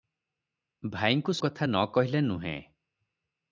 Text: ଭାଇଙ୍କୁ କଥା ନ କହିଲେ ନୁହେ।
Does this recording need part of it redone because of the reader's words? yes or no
no